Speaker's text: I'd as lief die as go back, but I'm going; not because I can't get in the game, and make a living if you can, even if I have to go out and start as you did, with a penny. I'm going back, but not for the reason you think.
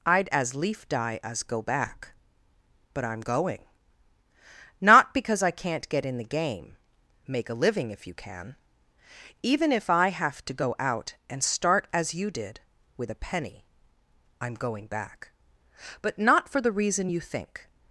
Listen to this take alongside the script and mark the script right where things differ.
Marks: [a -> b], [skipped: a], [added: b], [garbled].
I'd as lief die as go back, but I'm going; not because I can't get in the game, [skipped: and] make a living if you can, even if I have to go out and start as you did, with a penny. I'm going back, but not for the reason you think.